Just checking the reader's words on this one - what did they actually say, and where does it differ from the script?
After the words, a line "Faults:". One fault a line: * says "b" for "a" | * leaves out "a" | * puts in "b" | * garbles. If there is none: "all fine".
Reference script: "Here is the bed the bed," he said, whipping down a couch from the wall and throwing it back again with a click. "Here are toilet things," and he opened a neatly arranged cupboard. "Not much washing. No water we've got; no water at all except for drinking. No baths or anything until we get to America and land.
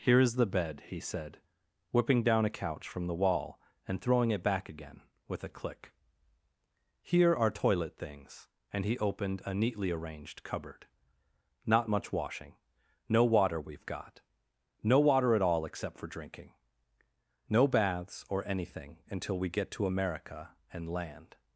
"Here is the bed," he said, whipping down a couch from the wall and throwing it back again with a click. "Here are toilet things," and he opened a neatly arranged cupboard. "Not much washing. No water we've got; no water at all except for drinking. No baths or anything until we get to America and land.
Faults:
* leaves out "the bed"